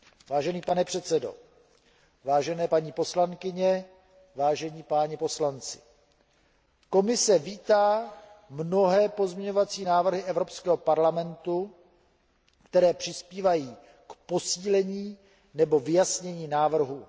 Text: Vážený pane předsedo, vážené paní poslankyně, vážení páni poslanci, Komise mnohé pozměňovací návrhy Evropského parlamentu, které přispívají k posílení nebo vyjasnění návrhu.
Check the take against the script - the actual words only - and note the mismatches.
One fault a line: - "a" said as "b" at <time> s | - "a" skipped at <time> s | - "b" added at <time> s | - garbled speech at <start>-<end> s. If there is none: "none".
- "vítá" added at 7.4 s